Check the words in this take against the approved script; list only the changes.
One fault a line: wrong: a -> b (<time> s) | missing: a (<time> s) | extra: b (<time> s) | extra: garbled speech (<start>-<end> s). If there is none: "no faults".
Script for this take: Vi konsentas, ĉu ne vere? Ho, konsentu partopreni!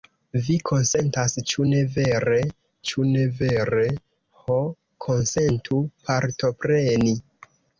extra: ĉu ne vere (2.9 s)